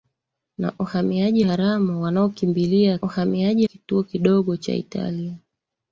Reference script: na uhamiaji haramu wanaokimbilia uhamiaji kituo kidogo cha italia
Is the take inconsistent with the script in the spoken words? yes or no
no